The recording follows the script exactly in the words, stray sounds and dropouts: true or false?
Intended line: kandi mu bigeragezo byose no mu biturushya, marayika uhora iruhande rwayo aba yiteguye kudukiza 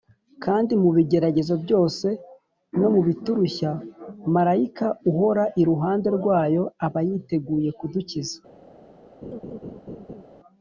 false